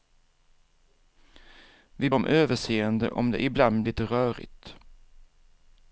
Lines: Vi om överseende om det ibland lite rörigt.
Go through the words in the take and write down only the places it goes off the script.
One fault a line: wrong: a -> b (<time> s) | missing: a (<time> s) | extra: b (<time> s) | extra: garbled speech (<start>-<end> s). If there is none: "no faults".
no faults